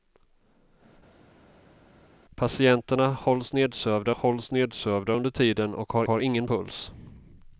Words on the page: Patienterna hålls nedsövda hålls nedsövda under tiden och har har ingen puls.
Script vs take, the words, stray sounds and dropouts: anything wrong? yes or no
no